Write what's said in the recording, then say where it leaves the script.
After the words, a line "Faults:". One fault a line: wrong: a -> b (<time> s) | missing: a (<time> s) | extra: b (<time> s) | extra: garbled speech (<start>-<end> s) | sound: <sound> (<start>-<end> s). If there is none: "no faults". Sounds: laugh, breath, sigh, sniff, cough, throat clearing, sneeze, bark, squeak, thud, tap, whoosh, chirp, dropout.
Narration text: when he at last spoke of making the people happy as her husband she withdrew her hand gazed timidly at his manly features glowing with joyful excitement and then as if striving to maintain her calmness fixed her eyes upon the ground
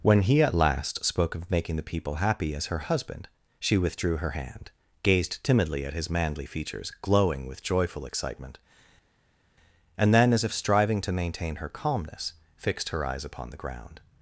when he at last spoke of making the people happy as her husband she withdrew her hand gazed timidly at his manly features glowing with joyful excitement and then as if striving to maintain her calmness fixed her eyes upon the ground
Faults:
no faults